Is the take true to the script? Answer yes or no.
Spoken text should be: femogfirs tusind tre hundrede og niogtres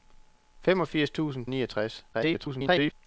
no